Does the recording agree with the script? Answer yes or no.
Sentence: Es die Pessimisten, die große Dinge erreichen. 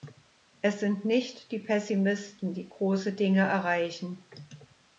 no